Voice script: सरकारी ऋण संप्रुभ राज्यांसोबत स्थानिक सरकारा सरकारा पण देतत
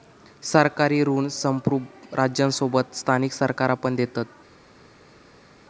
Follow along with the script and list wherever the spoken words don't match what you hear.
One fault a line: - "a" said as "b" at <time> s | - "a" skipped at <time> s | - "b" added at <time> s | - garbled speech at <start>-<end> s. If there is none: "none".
- "सरकारा" skipped at 3.7 s